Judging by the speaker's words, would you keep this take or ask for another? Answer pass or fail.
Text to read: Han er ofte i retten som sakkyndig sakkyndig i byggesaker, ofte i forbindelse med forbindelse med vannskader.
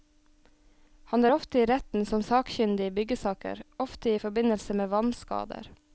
fail